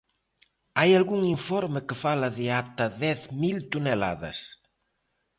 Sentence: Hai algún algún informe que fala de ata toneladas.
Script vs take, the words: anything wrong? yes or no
yes